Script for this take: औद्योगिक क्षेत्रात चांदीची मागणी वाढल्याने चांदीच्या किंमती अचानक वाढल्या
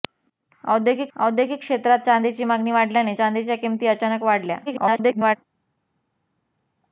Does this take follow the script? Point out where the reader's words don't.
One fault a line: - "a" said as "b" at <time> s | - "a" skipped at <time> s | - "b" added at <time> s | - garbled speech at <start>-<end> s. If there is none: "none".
- "औद्योगिक" added at 1.2 s
- garbled speech at 4.7-5.4 s